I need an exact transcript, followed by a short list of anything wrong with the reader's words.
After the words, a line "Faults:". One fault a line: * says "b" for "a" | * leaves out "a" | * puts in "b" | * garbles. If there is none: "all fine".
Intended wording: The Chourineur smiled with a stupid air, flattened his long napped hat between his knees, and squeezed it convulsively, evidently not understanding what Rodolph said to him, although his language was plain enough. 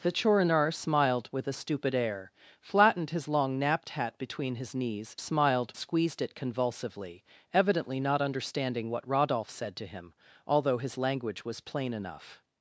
The Chourineur smiled with a stupid air, flattened his long napped hat between his knees, smiled squeezed it convulsively, evidently not understanding what Rodolph said to him, although his language was plain enough.
Faults:
* says "smiled" for "and"